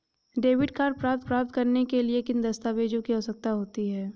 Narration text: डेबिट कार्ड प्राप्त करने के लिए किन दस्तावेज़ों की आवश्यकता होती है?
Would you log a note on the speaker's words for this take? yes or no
yes